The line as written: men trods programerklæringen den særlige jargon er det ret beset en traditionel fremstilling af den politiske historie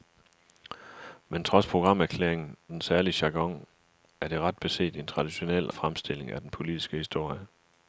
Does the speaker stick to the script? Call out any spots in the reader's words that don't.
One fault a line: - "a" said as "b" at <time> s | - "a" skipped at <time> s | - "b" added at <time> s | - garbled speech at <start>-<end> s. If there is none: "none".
none